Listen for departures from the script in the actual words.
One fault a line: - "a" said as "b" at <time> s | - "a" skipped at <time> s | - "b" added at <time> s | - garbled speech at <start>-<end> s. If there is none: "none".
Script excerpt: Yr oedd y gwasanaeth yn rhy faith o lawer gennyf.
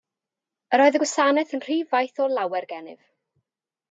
none